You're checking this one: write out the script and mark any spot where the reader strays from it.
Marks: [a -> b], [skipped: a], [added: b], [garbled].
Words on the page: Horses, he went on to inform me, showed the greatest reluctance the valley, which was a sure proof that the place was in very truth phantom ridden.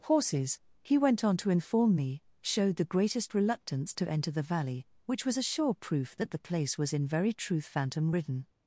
Horses, he went on to inform me, showed the greatest reluctance [added: to enter] the valley, which was a sure proof that the place was in very truth phantom ridden.